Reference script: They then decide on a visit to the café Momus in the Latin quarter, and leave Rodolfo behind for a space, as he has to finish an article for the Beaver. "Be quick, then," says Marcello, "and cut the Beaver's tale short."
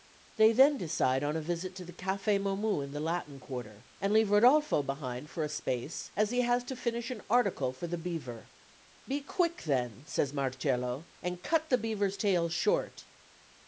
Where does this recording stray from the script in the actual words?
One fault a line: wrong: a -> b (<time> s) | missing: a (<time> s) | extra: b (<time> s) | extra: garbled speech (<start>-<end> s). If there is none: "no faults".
no faults